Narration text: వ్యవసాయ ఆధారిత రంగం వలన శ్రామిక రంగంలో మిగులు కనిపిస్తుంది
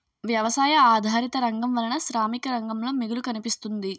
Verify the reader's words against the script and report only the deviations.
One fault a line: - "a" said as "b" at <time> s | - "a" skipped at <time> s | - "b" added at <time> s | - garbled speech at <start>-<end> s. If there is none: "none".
none